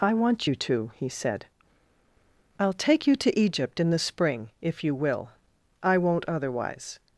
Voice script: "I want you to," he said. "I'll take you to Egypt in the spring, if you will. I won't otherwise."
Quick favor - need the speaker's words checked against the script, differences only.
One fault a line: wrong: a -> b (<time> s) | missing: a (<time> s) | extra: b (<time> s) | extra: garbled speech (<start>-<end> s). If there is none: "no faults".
no faults